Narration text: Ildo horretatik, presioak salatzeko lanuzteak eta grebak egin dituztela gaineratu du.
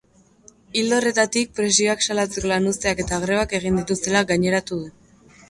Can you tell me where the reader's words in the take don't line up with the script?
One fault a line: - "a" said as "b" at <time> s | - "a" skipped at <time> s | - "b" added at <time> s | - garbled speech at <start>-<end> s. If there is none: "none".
none